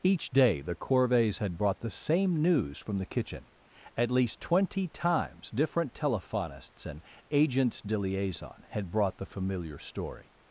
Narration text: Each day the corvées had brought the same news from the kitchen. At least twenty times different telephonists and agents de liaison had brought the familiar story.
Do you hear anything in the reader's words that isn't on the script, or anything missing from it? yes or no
no